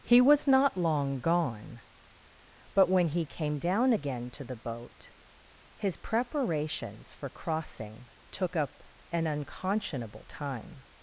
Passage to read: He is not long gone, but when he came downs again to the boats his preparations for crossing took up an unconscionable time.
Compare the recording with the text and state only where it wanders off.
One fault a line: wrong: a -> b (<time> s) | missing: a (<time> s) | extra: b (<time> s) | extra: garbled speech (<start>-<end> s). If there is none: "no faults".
wrong: is -> was (0.2 s)
wrong: downs -> down (3.6 s)
wrong: boats -> boat (4.6 s)